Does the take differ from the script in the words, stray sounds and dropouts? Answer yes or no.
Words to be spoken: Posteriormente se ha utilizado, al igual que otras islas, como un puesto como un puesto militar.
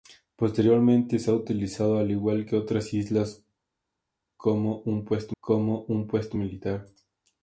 no